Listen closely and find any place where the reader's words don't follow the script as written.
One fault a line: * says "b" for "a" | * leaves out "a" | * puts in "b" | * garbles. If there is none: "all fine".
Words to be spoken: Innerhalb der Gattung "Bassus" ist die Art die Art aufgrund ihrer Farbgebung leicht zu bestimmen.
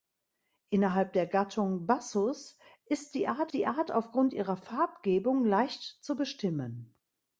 all fine